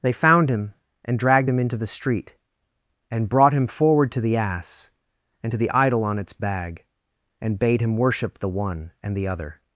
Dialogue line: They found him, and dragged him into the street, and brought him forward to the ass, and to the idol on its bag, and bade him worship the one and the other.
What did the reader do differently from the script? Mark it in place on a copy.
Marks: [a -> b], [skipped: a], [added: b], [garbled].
They found him, and dragged him into the street, and brought him forward to the ass, and to the idol on its bag, and bade him worship the one and the other.